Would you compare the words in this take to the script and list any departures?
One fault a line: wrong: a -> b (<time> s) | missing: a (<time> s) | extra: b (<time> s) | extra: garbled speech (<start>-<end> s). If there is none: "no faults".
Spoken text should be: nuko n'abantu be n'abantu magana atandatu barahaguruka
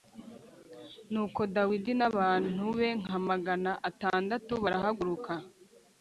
extra: dawidi (1.6 s)
wrong: n'abantu -> nka (3.0 s)